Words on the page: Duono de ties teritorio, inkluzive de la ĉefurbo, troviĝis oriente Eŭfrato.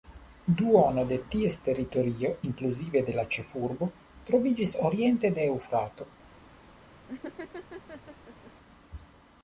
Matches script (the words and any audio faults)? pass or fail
fail